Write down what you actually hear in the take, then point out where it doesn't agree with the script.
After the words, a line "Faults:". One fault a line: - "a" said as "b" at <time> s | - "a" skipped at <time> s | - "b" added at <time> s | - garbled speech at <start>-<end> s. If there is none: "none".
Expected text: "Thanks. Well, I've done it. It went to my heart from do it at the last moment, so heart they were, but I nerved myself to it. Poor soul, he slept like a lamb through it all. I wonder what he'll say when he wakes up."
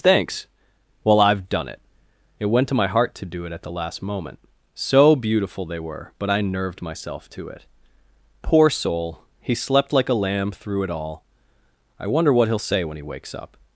"Thanks. Well, I've done it. It went to my heart to do it at the last moment, so beautiful they were, but I nerved myself to it. Poor soul, he slept like a lamb through it all. I wonder what he'll say when he wakes up."
Faults:
- "from" said as "to" at 3.1 s
- "heart" said as "beautiful" at 5.2 s